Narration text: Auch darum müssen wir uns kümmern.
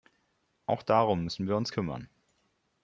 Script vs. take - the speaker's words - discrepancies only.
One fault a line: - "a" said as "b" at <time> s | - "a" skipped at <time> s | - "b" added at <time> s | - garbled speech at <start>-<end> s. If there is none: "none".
none